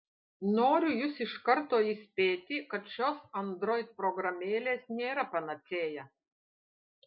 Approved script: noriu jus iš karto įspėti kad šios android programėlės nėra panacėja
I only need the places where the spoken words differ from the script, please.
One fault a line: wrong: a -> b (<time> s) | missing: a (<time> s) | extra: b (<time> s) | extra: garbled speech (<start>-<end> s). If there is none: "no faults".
no faults